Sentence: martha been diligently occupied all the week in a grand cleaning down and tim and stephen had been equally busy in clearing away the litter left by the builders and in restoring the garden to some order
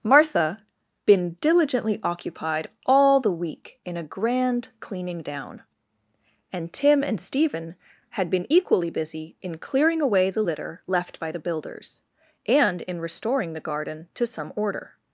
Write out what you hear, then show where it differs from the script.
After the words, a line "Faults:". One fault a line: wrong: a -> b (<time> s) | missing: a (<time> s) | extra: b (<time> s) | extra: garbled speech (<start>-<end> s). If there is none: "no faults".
martha been diligently occupied all the week in a grand cleaning down and tim and stephen had been equally busy in clearing away the litter left by the builders and in restoring the garden to some order
Faults:
no faults